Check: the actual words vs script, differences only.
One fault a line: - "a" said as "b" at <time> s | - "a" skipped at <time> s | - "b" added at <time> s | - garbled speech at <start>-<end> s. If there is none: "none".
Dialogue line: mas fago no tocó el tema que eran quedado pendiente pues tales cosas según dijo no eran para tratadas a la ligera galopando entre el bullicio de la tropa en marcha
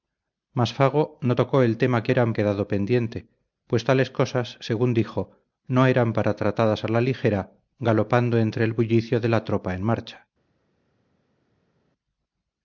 none